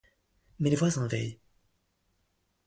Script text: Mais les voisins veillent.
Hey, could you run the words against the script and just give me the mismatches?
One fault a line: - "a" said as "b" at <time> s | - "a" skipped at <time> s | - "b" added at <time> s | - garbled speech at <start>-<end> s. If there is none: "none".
none